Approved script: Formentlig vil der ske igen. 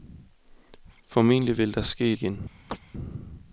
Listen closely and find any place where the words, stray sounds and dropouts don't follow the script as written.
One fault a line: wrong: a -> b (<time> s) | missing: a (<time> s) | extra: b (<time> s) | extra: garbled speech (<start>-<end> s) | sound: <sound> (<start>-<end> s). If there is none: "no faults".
sound: chirp (2.7-2.8 s)